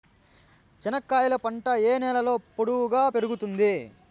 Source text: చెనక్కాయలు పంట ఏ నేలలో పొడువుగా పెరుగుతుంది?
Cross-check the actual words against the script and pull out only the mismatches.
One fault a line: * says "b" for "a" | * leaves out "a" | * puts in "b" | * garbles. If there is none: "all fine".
all fine